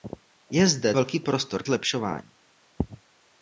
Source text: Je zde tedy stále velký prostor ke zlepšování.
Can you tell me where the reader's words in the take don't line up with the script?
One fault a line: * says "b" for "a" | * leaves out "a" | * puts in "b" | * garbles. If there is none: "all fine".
* leaves out "tedy stále"
* leaves out "ke"